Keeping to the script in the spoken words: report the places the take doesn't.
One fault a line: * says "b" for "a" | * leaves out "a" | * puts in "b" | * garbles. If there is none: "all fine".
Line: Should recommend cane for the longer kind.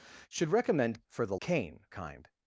* leaves out "cane"
* says "cane" for "longer"